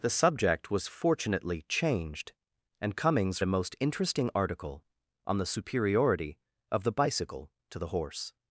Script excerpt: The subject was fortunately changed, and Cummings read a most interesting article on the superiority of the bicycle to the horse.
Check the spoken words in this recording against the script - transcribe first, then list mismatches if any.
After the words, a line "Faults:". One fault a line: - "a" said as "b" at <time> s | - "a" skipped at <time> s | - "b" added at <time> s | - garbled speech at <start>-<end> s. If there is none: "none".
The subject was fortunately changed, and Cummings a most interesting article on the superiority of the bicycle to the horse.
Faults:
- "read" skipped at 3.5 s